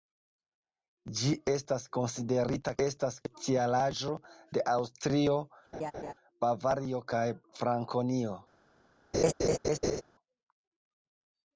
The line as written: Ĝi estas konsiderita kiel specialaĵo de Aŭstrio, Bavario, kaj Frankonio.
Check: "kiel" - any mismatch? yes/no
yes